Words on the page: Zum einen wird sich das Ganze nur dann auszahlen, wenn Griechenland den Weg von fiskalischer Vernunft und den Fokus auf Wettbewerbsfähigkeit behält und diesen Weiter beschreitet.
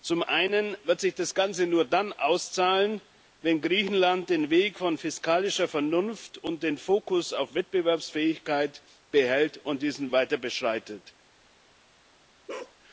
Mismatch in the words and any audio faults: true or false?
true